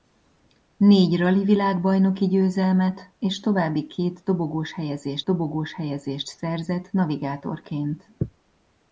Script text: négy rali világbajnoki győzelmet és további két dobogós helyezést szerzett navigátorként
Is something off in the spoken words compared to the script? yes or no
yes